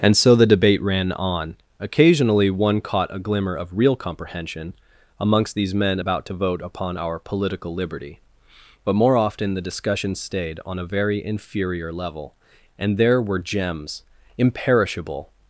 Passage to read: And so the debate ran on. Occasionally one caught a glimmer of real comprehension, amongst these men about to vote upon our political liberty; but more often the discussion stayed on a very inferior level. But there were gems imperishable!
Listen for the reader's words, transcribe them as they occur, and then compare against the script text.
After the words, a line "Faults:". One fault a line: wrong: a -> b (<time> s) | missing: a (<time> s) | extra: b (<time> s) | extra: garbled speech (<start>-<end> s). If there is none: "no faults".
And so the debate ran on. Occasionally one caught a glimmer of real comprehension, amongst these men about to vote upon our political liberty; but more often the discussion stayed on a very inferior level. And there were gems imperishable!
Faults:
wrong: But -> And (12.8 s)